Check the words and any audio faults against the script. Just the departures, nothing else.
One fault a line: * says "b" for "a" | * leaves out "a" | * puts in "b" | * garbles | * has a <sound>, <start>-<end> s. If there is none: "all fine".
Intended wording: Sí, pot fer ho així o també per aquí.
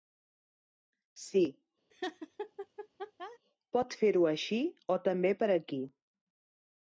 * has a laugh, 1.9-3.4 s